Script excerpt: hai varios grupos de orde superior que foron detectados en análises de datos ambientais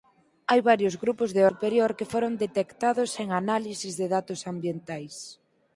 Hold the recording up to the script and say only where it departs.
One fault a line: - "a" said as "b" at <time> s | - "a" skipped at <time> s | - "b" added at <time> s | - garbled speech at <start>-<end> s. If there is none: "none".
- "orde" skipped at 1.4 s